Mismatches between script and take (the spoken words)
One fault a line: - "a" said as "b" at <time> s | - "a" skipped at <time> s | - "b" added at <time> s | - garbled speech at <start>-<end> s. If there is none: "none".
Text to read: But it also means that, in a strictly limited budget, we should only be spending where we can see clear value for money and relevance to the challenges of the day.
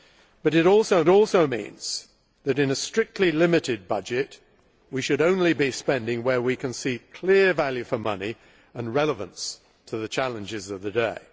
- "also" added at 1.1 s